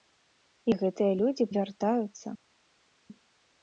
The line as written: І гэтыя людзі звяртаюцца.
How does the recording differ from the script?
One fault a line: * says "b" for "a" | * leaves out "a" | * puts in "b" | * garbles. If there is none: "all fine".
all fine